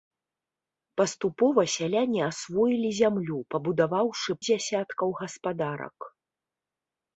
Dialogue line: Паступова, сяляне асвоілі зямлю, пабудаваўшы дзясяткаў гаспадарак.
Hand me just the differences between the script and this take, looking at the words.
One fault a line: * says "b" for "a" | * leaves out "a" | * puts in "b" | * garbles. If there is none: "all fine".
all fine